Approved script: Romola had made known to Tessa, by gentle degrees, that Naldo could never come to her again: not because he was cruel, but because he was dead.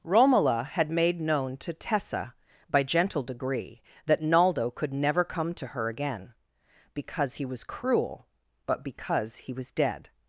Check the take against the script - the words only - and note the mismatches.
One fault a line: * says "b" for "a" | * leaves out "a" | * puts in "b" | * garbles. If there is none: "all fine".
* says "degree" for "degrees"
* leaves out "not"